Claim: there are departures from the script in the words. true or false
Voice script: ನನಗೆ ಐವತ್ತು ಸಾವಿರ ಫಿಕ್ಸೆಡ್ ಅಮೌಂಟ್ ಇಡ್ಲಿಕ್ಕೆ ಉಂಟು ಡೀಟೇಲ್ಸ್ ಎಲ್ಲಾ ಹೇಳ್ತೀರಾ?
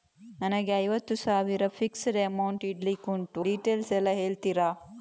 false